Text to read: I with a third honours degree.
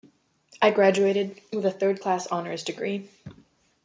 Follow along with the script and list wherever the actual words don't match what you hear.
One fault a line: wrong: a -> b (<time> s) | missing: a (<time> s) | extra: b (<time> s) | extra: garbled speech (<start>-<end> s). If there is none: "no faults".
extra: graduated (0.7 s)
extra: class (2.0 s)